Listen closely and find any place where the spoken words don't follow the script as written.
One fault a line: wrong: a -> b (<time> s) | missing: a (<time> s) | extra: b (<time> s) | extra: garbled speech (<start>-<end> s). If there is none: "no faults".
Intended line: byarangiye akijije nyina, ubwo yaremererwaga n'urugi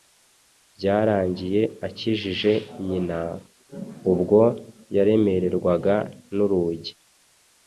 no faults